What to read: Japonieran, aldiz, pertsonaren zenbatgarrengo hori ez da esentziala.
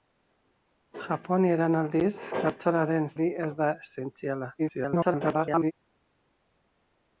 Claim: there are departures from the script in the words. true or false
true